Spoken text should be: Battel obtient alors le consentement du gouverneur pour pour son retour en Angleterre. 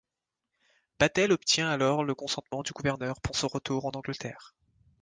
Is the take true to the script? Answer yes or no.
no